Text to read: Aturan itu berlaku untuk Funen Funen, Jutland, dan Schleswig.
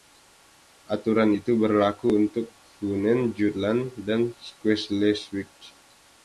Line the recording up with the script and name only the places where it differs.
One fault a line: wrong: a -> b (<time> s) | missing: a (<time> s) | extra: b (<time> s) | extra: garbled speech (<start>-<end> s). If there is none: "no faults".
missing: Funen (3.3 s)